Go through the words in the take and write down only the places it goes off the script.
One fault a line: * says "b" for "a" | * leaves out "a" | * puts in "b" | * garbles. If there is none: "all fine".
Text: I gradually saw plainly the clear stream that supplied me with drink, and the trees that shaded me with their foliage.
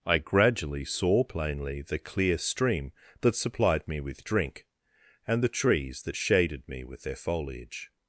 all fine